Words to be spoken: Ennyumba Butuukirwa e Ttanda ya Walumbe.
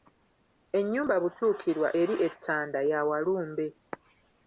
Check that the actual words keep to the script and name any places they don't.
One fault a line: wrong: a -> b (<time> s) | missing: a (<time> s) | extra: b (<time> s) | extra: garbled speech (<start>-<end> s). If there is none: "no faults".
extra: eri (2.0 s)